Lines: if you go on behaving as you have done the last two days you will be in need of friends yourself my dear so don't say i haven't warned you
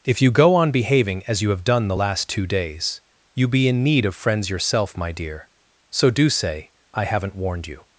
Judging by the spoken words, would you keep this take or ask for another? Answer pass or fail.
fail